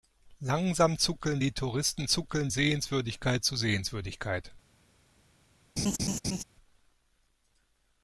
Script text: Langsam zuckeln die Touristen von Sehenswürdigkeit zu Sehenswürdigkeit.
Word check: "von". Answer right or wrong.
wrong